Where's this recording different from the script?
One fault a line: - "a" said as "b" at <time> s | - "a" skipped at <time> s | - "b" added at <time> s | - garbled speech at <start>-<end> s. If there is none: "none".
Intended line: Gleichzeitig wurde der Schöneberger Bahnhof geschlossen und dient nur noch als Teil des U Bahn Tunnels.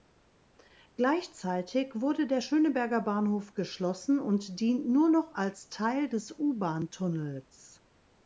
none